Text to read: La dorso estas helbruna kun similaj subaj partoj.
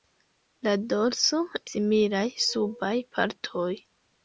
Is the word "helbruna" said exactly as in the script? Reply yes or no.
no